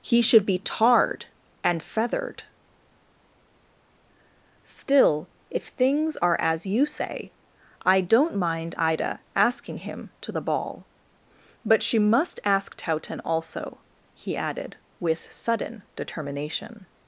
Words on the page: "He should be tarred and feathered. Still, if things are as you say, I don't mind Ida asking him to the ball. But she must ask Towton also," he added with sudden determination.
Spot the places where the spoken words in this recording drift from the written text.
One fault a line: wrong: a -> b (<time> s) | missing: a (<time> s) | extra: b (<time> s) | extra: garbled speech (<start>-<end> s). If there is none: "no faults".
no faults